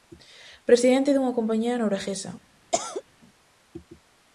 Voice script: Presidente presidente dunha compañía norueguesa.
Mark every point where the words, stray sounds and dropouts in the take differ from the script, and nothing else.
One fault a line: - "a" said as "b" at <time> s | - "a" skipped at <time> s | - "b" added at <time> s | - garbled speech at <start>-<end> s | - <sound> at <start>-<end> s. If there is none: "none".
- "presidente" skipped at 1.1 s
- cough at 2.7-3.0 s